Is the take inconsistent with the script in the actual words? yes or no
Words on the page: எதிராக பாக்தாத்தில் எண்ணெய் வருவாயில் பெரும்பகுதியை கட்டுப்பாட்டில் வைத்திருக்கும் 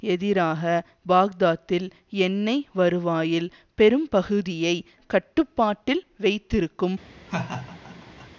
no